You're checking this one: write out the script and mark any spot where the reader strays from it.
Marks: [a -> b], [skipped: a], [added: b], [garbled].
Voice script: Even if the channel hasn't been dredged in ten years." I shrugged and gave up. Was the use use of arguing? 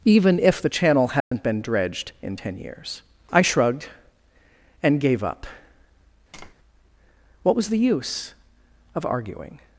Even if the channel hasn't been dredged in ten years." I shrugged and gave up. [added: What] Was the use [skipped: use] of arguing?